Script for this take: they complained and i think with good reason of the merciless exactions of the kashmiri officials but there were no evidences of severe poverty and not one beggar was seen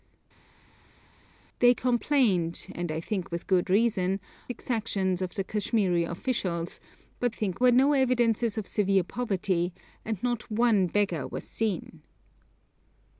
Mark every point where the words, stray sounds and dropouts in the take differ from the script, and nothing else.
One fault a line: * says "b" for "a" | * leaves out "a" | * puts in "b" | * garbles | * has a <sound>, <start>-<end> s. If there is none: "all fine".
* leaves out "of the merciless"
* says "think" for "there"